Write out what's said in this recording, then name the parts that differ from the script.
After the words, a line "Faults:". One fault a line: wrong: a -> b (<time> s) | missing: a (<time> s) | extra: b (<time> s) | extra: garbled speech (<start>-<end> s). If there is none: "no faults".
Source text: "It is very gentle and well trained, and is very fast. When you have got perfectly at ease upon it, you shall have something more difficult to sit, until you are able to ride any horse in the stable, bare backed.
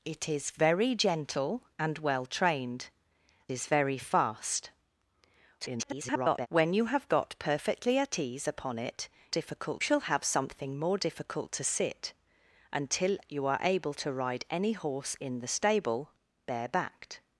"It is very gentle and well trained, is very fast. [garbled] When you have got perfectly at ease upon it, difficult shall have something more difficult to sit, until you are able to ride any horse in the stable, bare backed.
Faults:
missing: and (2.9 s)
extra: garbled speech (5.6-6.5 s)
wrong: you -> difficult (9.3 s)